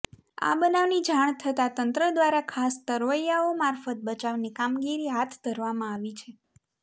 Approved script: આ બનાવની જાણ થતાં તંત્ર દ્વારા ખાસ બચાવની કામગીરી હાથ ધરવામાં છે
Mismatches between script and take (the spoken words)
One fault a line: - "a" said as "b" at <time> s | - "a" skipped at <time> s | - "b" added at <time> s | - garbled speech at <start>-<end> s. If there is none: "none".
- "તરવૈયાઓ મારફત" added at 2.9 s
- "આવી" added at 5.9 s